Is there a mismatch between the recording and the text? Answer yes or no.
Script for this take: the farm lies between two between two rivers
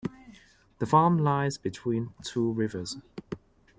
yes